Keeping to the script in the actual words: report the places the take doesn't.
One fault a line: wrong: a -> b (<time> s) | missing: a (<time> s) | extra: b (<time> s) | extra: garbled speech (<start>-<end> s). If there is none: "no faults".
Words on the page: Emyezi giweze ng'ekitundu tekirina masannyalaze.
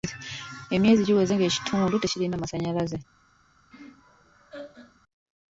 no faults